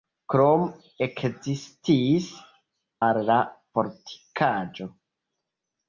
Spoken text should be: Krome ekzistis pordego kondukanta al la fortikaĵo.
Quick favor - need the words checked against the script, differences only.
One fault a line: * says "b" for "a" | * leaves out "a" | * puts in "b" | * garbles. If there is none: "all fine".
* leaves out "pordego kondukanta"